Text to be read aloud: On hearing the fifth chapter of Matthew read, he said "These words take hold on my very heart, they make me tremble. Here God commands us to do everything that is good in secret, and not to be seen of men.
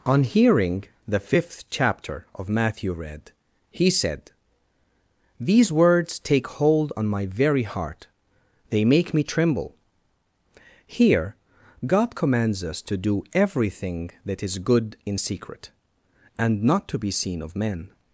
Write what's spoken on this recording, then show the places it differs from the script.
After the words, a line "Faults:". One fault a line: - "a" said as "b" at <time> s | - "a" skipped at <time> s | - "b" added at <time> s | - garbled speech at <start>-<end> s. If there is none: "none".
On hearing the fifth chapter of Matthew read, he said "These words take hold on my very heart, they make me tremble. Here God commands us to do everything that is good in secret, and not to be seen of men.
Faults:
none